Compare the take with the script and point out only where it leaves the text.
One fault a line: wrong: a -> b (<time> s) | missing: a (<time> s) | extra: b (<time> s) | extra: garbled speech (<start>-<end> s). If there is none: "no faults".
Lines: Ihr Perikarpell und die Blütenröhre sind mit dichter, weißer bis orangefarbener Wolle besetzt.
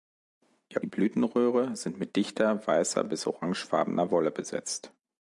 missing: Perikarpell und (0.8 s)